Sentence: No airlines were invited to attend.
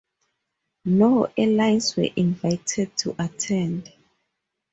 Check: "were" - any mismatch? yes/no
no